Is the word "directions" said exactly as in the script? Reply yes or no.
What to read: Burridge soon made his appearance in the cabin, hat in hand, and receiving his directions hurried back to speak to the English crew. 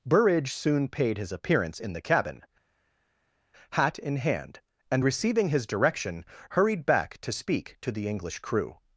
no